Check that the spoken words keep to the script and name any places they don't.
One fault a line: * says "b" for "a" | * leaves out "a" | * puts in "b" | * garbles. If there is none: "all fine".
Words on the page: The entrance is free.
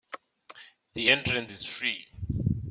all fine